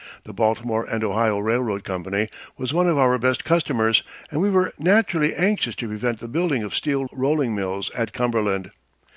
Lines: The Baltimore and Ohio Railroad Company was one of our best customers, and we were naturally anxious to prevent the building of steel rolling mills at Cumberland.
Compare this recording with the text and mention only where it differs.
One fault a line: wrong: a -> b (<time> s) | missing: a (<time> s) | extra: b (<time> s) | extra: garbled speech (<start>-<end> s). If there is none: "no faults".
no faults